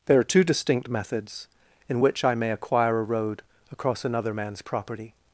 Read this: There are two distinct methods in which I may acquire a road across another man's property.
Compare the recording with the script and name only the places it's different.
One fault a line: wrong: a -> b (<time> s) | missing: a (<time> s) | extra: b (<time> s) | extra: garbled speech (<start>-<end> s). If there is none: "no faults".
no faults